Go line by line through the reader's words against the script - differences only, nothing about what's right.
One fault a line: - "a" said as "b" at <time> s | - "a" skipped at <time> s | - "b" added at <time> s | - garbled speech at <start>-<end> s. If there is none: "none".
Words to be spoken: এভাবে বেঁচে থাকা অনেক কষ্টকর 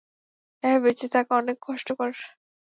none